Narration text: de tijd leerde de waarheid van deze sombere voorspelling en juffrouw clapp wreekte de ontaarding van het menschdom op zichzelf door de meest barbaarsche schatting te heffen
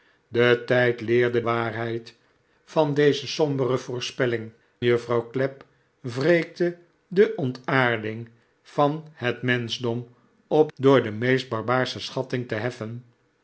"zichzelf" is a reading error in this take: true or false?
true